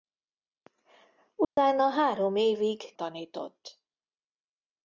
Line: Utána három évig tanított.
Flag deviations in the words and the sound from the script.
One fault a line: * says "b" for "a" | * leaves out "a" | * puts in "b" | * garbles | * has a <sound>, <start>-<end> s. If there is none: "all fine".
* has a dropout, 1.4-1.6 s